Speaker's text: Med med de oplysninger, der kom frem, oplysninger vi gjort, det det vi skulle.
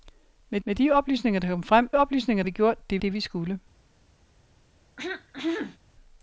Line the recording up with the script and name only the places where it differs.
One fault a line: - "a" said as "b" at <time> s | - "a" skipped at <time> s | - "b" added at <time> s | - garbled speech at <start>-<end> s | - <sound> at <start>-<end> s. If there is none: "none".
- throat clearing at 5.0-5.8 s